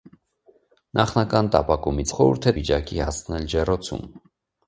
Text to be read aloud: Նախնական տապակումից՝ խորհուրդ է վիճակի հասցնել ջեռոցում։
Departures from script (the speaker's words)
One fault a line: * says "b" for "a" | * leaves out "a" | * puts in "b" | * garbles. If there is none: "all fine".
all fine